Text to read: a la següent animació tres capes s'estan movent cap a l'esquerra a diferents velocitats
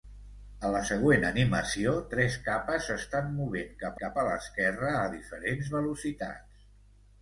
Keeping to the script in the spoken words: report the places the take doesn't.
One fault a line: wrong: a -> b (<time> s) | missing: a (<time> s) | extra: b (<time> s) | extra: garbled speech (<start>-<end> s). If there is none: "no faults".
extra: cap (4.0 s)